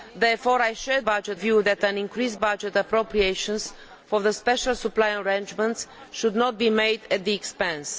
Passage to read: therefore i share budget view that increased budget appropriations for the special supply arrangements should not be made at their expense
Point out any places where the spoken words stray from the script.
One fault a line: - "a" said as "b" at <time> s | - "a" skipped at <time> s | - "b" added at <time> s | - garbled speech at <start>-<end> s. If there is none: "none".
none